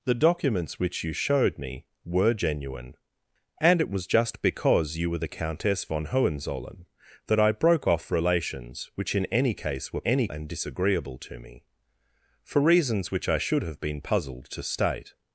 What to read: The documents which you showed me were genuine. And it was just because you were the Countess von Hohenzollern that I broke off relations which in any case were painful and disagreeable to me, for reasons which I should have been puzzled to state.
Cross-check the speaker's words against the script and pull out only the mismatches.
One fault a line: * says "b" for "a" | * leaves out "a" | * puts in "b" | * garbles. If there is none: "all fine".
* says "any" for "painful"